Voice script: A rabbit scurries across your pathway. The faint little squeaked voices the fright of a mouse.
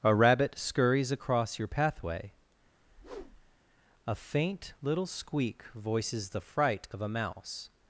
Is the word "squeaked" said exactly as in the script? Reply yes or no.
no